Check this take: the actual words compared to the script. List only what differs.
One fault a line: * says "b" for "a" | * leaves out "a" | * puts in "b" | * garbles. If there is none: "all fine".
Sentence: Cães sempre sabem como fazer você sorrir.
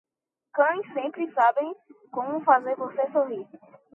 all fine